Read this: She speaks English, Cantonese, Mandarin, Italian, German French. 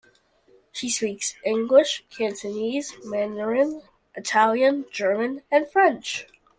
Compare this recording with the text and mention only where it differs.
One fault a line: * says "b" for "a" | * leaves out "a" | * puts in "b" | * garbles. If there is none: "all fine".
* puts in "and"